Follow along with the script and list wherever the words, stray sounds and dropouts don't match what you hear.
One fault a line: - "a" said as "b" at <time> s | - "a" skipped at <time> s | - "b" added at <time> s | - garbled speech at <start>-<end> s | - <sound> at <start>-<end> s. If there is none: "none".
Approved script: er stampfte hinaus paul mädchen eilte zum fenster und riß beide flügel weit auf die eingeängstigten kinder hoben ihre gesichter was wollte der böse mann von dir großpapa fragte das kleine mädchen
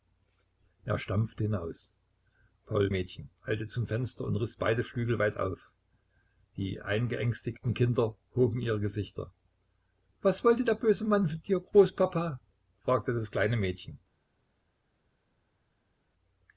none